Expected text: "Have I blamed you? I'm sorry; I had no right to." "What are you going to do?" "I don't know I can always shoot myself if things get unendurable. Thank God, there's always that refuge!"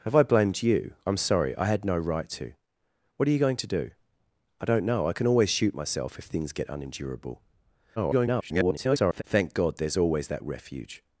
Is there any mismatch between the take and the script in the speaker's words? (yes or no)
yes